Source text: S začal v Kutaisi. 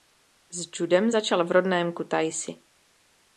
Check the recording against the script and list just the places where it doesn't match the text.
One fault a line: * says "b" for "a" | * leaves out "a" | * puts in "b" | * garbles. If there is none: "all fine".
* puts in "judem"
* puts in "rodném"